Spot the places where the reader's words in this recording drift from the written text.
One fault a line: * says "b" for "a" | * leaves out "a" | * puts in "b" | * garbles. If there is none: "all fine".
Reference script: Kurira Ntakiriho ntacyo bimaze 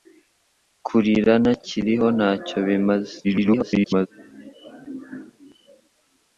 * garbles